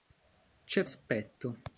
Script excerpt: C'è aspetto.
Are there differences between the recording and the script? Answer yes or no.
no